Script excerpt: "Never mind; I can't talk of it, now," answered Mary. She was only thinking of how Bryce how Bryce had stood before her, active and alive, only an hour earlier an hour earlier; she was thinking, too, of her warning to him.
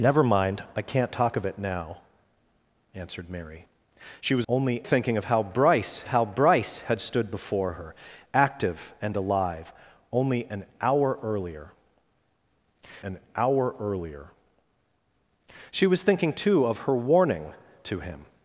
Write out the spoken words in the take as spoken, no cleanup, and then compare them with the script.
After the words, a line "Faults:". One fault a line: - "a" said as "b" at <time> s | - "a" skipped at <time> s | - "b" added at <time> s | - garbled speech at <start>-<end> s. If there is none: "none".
"Never mind; I can't talk of it, now," answered Mary. She was only thinking of how Bryce how Bryce had stood before her, active and alive, only an hour earlier an hour earlier; she was thinking, too, of her warning to him.
Faults:
none